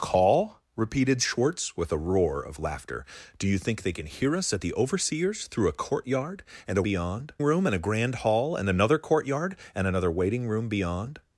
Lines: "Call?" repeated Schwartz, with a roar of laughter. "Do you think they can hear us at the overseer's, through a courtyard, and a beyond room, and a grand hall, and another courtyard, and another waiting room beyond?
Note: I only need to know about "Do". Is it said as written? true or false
true